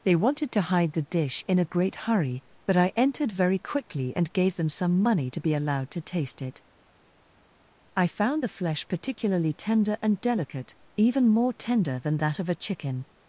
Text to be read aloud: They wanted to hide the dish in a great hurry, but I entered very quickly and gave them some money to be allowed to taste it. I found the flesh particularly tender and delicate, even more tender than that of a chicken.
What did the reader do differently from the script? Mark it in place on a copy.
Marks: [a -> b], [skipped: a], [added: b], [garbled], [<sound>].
They wanted to hide the dish in a great hurry, but I entered very quickly and gave them some money to be allowed to taste it. I found the flesh particularly tender and delicate, even more tender than that of a chicken.